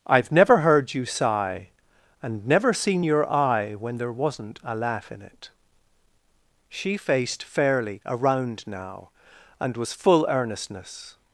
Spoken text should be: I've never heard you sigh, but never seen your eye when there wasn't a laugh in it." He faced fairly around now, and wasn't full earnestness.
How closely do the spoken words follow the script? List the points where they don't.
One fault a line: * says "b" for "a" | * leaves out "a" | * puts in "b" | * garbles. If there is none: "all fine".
* says "and" for "but"
* says "She" for "He"
* says "was" for "wasn't"